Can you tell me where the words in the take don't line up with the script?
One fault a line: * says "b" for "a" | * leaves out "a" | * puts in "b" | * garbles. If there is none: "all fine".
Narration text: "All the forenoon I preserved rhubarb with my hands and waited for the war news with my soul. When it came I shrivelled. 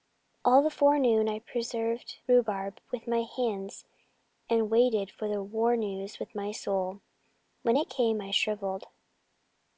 all fine